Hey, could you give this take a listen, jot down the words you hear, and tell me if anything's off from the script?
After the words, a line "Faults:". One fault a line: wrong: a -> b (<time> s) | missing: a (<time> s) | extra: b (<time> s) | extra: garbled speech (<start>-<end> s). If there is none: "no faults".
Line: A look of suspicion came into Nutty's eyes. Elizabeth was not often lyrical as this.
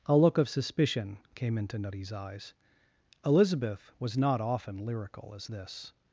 A look of suspicion came into Nutty's eyes. Elizabeth was not often lyrical as this.
Faults:
no faults